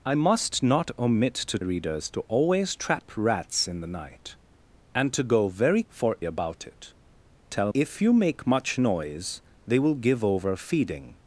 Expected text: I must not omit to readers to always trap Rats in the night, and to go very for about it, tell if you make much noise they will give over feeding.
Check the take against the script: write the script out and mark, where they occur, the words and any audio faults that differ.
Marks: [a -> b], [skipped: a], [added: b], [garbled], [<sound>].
I must not omit to readers to always trap Rats in the night, and to go very for about it, tell if you make much noise they will give over feeding.